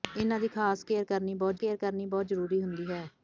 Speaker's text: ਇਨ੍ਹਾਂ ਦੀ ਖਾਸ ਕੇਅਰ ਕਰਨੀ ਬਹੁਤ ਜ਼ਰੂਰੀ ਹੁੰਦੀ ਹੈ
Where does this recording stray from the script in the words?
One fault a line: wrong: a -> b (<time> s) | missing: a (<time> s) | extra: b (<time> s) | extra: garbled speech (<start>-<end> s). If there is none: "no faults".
extra: ਕੇਅਰ ਕਰਨੀ ਬਹੁਤ (1.6 s)